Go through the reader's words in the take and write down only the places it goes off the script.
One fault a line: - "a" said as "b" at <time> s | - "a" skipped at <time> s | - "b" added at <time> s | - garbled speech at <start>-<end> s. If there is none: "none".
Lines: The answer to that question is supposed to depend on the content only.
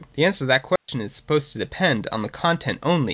none